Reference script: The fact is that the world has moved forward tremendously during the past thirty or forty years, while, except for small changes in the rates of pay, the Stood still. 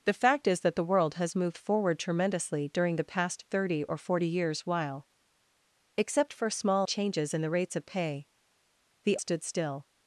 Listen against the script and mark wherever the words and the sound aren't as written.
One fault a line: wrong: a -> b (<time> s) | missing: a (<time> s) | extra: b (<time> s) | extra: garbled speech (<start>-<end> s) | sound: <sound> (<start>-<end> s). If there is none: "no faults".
no faults